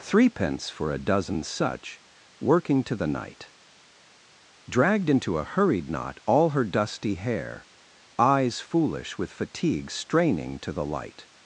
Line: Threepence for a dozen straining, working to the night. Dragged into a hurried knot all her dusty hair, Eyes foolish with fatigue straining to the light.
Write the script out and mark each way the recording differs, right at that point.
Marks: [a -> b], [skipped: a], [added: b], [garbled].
Threepence for a dozen [straining, -> such] working to the night. Dragged into a hurried knot all her dusty hair, Eyes foolish with fatigue straining to the light.